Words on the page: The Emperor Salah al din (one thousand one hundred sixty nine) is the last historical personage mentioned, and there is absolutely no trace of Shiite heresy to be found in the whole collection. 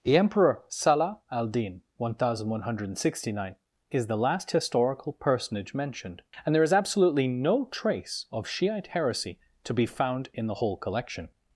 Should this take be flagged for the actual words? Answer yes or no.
no